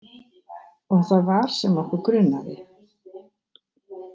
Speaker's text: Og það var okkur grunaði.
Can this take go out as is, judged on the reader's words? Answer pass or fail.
fail